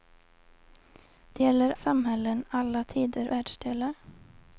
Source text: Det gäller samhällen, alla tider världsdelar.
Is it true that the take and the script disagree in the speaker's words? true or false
false